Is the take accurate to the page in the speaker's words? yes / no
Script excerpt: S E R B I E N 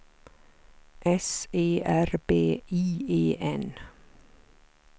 yes